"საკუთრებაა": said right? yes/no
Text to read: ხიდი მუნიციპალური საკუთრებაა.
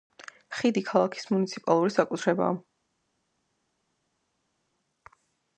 yes